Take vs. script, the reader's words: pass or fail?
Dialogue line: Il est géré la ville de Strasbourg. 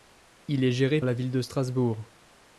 pass